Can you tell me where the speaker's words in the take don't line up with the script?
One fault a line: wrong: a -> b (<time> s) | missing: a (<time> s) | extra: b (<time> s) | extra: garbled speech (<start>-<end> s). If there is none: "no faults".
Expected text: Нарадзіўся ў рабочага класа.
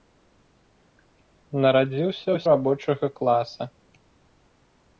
no faults